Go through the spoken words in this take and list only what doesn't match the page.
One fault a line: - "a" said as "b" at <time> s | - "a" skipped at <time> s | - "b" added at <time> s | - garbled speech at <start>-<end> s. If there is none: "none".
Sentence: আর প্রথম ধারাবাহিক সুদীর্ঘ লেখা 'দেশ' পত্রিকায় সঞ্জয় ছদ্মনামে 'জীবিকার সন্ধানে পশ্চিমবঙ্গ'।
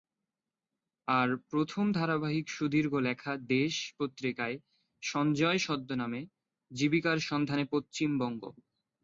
none